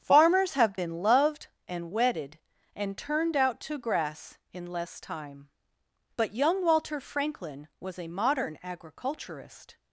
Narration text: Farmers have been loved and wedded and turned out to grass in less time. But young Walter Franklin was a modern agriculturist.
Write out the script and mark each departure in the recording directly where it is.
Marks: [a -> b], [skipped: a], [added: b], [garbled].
Farmers have been loved and wedded and turned out to grass in less time. But young Walter Franklin was a modern agriculturist.